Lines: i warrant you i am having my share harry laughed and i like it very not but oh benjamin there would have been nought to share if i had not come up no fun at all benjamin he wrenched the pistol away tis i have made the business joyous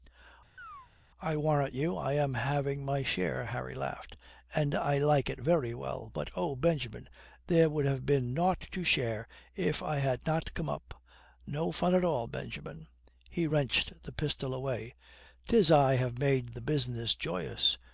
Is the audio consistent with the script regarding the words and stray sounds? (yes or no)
no